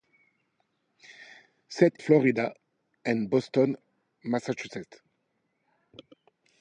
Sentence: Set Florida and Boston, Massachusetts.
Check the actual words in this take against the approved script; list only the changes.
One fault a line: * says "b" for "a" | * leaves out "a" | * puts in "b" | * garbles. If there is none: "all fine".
all fine